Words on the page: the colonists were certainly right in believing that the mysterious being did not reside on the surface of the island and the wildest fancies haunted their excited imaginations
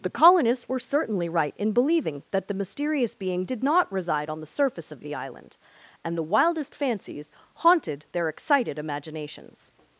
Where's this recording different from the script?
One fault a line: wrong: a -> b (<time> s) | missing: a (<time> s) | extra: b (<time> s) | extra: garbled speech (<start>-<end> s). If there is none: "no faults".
no faults